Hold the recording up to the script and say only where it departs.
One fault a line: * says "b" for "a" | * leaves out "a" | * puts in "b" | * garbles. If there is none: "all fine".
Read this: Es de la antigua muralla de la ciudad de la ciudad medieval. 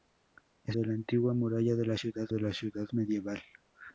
all fine